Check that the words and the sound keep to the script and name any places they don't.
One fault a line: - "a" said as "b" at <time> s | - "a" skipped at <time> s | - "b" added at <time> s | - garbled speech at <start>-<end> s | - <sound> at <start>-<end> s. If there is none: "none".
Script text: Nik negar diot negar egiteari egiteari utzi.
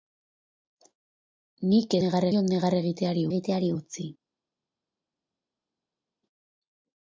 none